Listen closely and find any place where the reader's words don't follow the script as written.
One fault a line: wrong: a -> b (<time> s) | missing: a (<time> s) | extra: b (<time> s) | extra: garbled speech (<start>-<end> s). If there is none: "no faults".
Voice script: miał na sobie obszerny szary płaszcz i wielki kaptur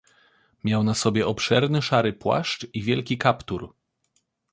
no faults